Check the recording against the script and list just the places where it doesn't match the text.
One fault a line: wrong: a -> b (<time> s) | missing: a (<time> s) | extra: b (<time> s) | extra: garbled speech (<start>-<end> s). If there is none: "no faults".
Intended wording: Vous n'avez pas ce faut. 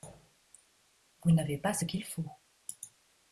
extra: qu'il (1.8 s)